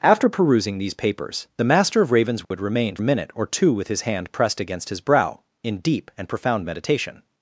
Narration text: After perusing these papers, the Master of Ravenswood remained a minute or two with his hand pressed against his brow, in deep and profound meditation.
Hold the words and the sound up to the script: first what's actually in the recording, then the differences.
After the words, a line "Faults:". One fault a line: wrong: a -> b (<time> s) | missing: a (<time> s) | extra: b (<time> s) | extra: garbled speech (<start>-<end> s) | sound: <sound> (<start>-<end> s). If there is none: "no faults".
After perusing these papers, the Master of Ravenswood remained a minute or two with his hand pressed against his brow, in deep and profound meditation.
Faults:
sound: dropout (2.4-2.5 s)